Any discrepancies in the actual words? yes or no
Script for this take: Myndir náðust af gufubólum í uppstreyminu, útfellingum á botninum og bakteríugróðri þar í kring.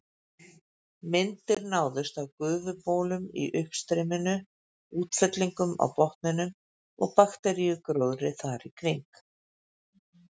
no